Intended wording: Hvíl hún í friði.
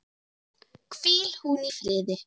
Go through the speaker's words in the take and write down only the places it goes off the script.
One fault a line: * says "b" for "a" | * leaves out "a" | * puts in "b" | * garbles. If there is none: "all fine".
all fine